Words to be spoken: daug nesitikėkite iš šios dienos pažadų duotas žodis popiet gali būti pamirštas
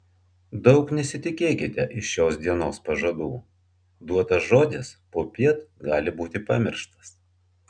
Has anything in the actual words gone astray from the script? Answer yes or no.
no